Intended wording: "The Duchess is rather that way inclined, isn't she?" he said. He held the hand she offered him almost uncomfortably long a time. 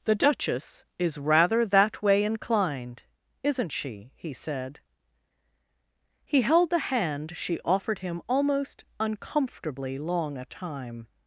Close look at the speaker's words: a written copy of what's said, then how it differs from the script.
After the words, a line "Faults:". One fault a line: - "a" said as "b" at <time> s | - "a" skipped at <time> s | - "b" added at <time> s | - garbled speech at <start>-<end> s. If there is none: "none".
"The Duchess is rather that way inclined, isn't she?" he said. He held the hand she offered him almost uncomfortably long a time.
Faults:
none